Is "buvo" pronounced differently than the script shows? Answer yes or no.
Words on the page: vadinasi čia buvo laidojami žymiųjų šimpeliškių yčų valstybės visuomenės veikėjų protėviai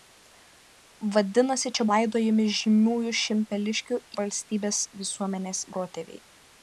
yes